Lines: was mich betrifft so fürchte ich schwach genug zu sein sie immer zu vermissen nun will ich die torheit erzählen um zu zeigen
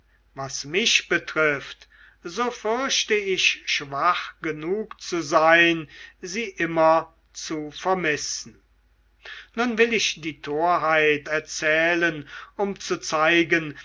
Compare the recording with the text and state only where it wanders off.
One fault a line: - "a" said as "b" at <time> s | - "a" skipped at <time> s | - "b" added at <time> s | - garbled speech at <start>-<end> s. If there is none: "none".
none